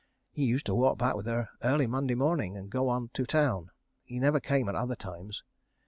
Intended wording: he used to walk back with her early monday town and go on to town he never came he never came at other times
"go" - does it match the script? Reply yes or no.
yes